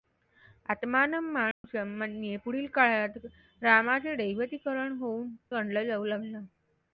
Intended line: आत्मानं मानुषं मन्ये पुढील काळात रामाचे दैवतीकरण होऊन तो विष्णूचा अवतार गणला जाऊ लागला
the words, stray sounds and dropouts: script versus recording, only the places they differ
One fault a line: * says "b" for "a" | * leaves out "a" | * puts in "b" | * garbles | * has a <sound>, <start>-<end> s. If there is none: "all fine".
* has a dropout, 1.5-1.6 s
* leaves out "तो विष्णूचा अवतार"